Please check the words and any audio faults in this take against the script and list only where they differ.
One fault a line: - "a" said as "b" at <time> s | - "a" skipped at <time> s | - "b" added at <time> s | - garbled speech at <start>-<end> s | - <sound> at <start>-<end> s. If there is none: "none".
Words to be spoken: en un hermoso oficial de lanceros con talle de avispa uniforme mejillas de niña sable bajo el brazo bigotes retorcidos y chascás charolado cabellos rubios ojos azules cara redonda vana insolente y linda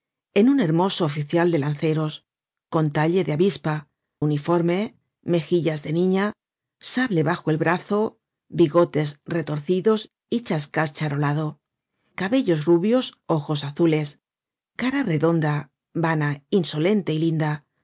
none